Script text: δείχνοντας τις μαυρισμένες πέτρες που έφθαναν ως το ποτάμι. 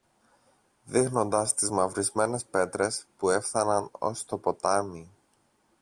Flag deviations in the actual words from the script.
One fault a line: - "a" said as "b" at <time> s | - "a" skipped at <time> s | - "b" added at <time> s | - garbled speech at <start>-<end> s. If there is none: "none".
none